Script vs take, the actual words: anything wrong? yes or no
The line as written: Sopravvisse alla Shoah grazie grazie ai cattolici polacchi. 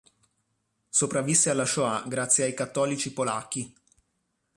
yes